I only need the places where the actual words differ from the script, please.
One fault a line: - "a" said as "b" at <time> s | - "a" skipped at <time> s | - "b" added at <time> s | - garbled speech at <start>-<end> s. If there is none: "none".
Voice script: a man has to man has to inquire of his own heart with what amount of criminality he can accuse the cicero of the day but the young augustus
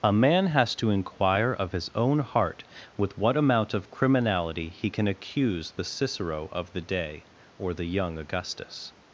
- "man has to" skipped at 0.9 s
- "but" said as "or" at 7.6 s